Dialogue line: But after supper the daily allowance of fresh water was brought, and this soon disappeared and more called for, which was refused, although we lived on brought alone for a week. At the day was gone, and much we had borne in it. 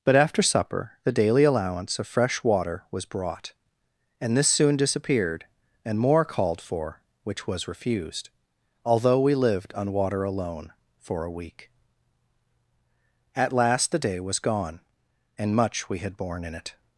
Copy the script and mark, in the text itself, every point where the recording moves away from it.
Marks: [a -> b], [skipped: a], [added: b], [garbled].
But after supper the daily allowance of fresh water was brought, and this soon disappeared and more called for, which was refused, although we lived on [brought -> water] alone for a week. At [added: last] the day was gone, and much we had borne in it.